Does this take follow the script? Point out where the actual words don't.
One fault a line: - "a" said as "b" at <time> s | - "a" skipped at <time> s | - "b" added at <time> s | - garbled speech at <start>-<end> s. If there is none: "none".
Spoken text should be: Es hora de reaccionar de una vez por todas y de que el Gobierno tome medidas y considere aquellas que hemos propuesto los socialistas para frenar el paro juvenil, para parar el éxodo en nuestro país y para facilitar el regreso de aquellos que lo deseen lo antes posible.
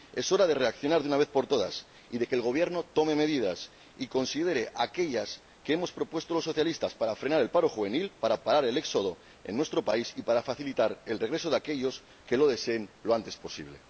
none